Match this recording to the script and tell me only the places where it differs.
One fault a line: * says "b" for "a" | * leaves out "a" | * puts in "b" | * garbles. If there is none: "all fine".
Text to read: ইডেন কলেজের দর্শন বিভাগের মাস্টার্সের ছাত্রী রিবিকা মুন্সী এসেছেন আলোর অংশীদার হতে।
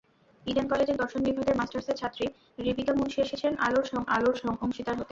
* puts in "আলোর"